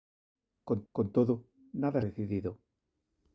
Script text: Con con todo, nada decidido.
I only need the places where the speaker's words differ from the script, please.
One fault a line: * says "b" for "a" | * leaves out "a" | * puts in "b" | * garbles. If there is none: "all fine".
all fine